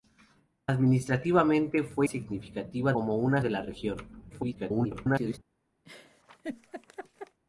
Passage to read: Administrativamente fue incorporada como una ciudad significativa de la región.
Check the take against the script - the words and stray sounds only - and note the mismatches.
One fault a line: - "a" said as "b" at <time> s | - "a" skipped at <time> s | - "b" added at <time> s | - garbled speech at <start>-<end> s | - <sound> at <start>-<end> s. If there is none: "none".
- "incorporada" said as "significativa" at 2.0 s
- "ciudad significativa" skipped at 3.4 s
- garbled speech at 4.3-5.4 s
- laugh at 5.8-7.4 s